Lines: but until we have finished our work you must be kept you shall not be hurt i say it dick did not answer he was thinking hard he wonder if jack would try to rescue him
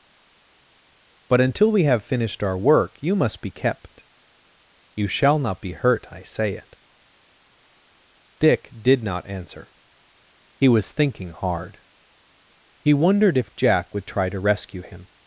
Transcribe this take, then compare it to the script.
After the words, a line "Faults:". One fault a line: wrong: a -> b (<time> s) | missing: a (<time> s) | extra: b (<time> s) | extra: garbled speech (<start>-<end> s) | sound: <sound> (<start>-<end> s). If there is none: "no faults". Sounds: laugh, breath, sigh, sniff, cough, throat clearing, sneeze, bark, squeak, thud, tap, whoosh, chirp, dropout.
but until we have finished our work you must be kept you shall not be hurt i say it dick did not answer he was thinking hard he wondered if jack would try to rescue him
Faults:
wrong: wonder -> wondered (12.9 s)